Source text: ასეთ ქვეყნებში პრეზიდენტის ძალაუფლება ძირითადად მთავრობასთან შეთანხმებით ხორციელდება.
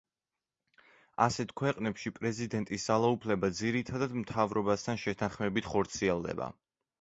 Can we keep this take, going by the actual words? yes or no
yes